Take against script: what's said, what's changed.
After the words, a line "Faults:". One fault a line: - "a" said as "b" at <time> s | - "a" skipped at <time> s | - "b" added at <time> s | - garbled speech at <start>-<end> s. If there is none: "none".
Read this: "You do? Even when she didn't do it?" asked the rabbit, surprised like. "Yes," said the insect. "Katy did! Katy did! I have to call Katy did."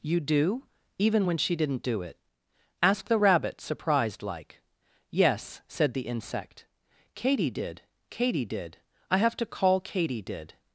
"You do? Even when she didn't do it?" asked the rabbit, surprised like. "Yes," said the insect. "Katy did! Katy did! I have to call Katy did."
Faults:
none